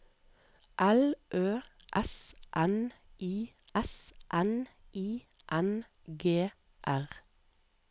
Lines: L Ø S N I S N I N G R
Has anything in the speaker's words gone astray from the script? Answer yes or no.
no